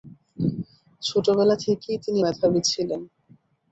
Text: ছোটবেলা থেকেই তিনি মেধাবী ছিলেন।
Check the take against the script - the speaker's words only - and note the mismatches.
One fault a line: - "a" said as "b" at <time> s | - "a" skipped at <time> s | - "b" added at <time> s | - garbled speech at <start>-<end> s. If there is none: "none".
none